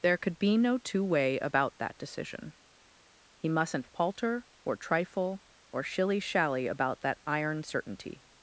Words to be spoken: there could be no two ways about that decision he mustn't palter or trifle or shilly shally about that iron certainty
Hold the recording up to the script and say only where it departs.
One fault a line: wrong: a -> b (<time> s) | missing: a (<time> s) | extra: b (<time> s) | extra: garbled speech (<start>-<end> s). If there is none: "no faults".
wrong: ways -> way (1.0 s)